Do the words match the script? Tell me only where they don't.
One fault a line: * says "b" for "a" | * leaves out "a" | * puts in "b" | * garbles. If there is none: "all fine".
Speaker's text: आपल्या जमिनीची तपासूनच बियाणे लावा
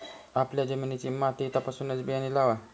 * puts in "माती"